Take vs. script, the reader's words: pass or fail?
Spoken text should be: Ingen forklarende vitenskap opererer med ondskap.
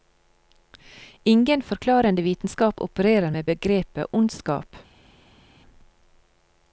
fail